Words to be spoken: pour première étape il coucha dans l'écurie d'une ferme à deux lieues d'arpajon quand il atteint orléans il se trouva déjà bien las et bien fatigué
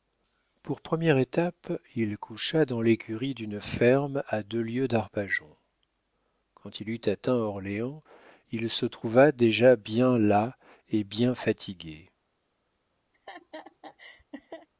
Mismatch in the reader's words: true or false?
true